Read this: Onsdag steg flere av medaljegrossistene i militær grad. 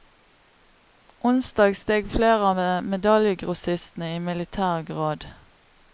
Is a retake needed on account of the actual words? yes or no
no